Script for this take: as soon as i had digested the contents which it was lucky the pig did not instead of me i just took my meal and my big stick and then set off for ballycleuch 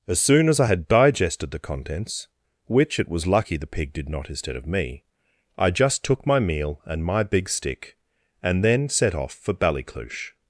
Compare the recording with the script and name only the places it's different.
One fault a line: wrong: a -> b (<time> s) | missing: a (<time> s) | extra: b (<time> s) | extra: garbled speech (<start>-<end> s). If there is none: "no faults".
no faults